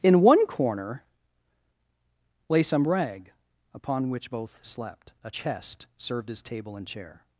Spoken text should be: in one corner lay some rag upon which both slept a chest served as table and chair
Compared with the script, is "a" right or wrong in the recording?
right